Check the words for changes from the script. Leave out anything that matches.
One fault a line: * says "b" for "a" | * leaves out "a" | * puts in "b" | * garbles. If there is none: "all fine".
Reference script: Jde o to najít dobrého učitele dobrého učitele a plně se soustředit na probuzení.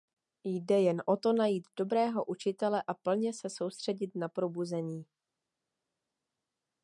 * puts in "jen"
* leaves out "dobrého učitele"